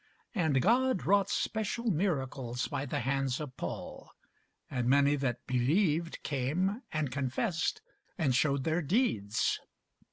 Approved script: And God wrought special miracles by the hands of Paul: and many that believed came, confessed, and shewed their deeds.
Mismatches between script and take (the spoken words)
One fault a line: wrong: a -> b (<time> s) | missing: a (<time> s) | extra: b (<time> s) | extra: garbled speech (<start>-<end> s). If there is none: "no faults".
extra: and (6.9 s)